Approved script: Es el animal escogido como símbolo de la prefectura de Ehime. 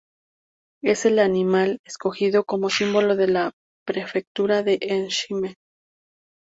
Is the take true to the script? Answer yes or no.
yes